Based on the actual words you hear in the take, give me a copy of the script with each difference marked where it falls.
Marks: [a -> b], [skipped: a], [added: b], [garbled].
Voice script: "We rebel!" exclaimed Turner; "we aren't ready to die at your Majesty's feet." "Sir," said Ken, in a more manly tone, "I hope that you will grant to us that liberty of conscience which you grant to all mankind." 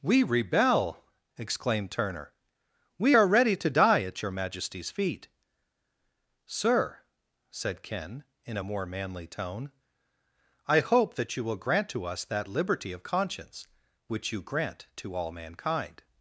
"We rebel!" exclaimed Turner; "we [aren't -> are] ready to die at your Majesty's feet." "Sir," said Ken, in a more manly tone, "I hope that you will grant to us that liberty of conscience which you grant to all mankind."